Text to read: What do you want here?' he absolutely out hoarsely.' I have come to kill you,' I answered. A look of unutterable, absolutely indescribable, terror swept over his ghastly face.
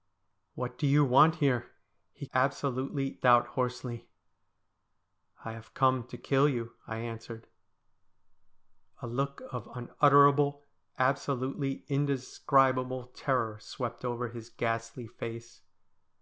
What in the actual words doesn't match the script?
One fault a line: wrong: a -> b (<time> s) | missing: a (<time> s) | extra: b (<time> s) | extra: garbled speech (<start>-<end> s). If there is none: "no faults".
no faults